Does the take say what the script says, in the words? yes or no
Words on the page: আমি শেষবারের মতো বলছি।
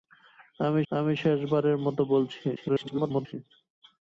no